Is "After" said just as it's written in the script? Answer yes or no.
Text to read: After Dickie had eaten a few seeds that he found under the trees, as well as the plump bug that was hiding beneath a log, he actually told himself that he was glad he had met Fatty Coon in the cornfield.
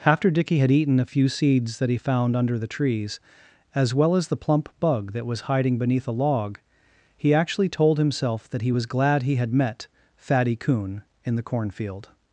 yes